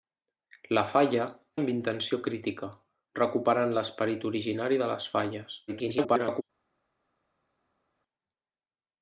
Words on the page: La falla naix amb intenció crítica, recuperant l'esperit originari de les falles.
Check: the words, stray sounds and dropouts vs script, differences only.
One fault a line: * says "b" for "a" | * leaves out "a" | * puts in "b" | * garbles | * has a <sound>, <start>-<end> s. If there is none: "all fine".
* leaves out "naix"
* garbles